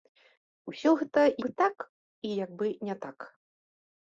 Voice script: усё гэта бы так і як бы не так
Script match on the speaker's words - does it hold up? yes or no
yes